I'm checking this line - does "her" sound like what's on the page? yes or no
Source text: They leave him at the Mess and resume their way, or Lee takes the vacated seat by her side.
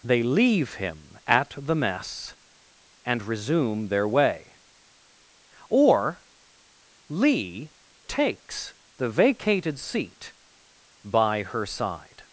yes